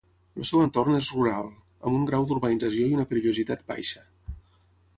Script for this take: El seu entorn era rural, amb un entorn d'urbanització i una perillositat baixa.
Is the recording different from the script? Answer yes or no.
yes